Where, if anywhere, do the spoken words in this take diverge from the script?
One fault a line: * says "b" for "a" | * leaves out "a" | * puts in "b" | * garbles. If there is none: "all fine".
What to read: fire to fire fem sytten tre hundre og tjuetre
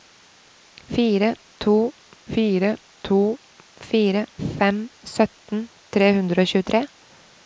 * puts in "to fire"